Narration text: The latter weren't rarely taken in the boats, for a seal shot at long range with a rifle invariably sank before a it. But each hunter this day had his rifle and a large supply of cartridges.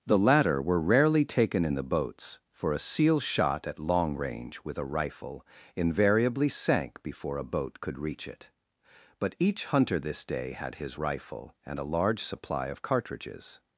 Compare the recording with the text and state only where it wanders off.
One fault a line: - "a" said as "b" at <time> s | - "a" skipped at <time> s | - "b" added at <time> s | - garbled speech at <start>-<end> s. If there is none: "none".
- "weren't" said as "were" at 0.6 s
- "boat could reach" added at 7.5 s